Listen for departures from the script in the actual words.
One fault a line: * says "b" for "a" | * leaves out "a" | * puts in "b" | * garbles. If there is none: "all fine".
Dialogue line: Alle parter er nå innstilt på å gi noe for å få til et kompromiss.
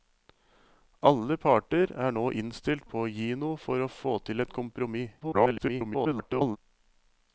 * garbles